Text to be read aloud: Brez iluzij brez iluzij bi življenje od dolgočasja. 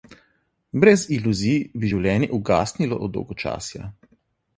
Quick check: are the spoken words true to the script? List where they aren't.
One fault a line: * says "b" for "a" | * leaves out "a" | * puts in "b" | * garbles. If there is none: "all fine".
* leaves out "brez iluzij"
* puts in "ugasnilo"